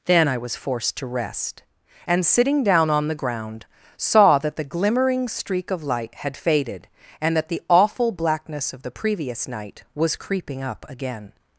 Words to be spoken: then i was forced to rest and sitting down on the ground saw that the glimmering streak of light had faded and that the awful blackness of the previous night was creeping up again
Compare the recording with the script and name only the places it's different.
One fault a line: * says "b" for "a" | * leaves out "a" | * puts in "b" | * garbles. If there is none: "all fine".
all fine